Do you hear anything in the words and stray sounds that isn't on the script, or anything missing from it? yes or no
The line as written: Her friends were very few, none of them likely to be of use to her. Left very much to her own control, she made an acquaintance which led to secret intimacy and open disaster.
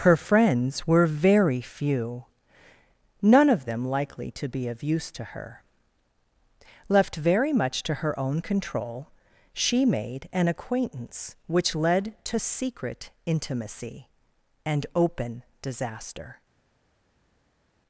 no